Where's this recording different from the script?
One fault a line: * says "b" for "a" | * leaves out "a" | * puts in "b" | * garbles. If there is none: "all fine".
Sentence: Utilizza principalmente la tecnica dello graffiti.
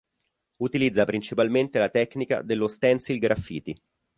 * puts in "stencil"